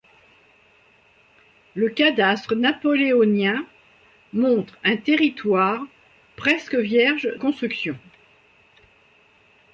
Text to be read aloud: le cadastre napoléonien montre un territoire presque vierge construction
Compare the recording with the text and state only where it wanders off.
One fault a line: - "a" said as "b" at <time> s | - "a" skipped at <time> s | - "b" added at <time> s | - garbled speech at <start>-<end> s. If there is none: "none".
none